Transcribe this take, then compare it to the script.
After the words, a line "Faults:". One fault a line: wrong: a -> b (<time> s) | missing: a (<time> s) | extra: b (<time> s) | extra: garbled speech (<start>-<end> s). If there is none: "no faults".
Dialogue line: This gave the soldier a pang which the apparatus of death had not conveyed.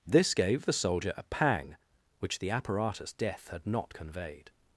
This gave the soldier a pang which the apparatus death had not conveyed.
Faults:
missing: of (3.1 s)